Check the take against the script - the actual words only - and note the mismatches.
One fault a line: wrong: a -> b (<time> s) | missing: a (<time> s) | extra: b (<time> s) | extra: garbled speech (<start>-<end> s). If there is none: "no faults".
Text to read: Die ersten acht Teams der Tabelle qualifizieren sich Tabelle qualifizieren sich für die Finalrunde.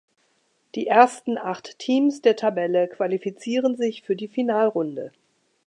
missing: Tabelle qualifizieren sich (4.0 s)